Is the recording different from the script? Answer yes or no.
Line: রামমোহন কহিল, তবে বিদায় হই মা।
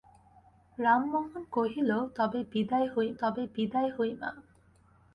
yes